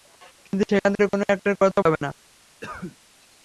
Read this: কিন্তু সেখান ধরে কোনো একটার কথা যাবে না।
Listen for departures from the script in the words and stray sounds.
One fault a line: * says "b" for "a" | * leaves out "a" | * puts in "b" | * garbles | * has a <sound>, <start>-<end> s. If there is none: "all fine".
* has a cough, 2.6-3.0 s